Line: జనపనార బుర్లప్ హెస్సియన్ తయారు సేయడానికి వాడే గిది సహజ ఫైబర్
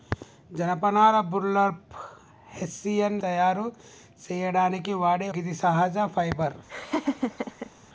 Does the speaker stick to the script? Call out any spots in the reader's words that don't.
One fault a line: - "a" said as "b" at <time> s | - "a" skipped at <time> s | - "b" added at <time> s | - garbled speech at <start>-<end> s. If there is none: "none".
none